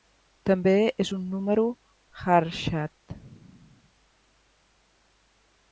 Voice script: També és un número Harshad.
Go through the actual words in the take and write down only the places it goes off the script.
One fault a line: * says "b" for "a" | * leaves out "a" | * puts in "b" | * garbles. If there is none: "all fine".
all fine